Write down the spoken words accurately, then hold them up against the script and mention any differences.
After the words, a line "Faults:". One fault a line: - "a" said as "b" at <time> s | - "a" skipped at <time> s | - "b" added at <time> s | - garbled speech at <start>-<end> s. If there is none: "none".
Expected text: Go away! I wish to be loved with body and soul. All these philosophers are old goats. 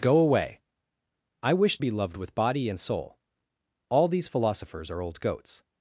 Go away! I wish be loved with body and soul. All these philosophers are old goats.
Faults:
- "to" skipped at 1.8 s